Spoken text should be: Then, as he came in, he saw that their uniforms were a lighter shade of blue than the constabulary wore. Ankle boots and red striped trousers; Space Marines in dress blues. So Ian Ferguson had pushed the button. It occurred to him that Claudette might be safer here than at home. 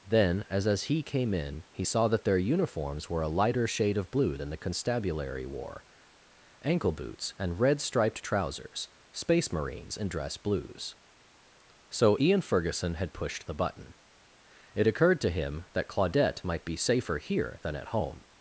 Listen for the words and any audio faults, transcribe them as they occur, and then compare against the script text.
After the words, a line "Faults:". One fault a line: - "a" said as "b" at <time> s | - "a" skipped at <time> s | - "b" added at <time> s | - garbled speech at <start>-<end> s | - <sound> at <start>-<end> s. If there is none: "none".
Then, as as he came in, he saw that their uniforms were a lighter shade of blue than the constabulary wore. Ankle boots and red striped trousers; Space Marines in dress blues. So Ian Ferguson had pushed the button. It occurred to him that Claudette might be safer here than at home.
Faults:
- "as" added at 0.7 s